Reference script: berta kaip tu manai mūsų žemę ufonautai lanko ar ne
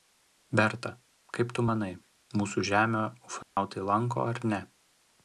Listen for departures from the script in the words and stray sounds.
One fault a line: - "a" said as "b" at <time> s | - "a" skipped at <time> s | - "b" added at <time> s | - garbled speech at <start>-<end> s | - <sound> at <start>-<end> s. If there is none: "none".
- dropout at 3.4-3.6 s